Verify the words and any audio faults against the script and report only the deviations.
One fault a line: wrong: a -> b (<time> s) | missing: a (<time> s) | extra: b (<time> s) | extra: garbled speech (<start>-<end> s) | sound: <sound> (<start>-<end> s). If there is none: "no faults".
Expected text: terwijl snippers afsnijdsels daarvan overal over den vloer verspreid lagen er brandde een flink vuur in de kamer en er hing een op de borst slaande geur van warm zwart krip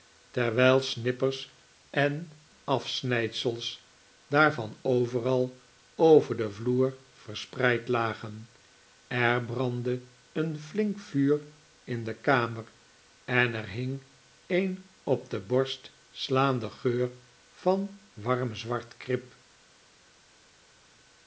extra: en (1.9 s)